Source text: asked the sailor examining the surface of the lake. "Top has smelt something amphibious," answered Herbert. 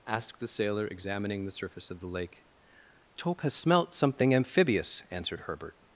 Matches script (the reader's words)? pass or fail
pass